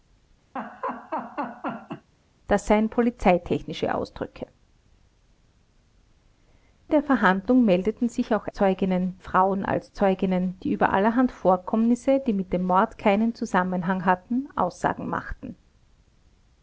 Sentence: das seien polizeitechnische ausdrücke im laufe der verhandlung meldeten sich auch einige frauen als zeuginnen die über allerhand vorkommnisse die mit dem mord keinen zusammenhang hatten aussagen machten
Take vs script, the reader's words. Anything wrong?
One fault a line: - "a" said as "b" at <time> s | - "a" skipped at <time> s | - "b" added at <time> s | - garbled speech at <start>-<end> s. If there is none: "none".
- "im laufe" skipped at 4.5 s
- "einige" said as "zeuginnen" at 8.5 s